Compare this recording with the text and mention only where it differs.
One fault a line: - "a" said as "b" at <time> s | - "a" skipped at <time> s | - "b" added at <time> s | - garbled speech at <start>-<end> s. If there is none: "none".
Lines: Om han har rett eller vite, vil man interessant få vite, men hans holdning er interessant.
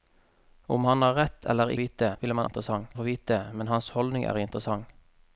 none